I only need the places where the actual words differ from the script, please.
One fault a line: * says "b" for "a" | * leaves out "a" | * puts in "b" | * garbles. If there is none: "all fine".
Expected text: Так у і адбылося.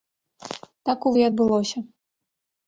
all fine